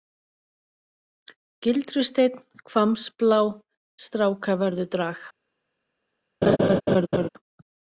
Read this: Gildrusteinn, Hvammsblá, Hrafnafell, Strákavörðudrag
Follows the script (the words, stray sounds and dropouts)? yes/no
no